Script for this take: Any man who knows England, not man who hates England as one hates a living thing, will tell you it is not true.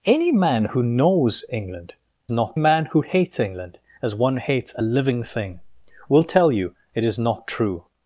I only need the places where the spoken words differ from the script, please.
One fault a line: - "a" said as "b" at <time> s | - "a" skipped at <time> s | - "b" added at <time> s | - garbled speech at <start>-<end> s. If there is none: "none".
none